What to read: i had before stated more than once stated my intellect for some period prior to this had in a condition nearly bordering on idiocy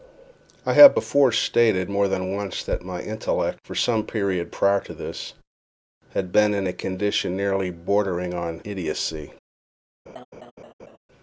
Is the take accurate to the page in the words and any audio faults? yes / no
no